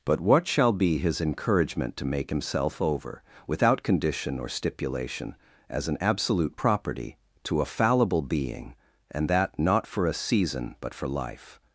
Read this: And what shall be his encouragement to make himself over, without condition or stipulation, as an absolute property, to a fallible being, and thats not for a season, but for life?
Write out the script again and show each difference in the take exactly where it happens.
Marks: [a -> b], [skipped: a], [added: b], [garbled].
[And -> But] what shall be his encouragement to make himself over, without condition or stipulation, as an absolute property, to a fallible being, and [thats -> that] not for a season, but for life?